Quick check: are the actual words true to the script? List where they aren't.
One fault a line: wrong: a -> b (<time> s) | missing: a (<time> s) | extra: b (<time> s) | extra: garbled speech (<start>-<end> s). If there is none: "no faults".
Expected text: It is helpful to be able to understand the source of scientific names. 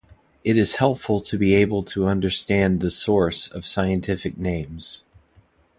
no faults